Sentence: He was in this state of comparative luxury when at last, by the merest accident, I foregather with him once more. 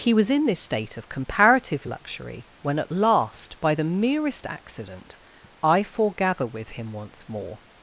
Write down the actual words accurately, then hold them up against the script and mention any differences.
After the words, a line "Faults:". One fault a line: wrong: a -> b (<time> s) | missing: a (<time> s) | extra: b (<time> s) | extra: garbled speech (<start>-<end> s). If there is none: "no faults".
He was in this state of comparative luxury when at last, by the merest accident, I foregather with him once more.
Faults:
no faults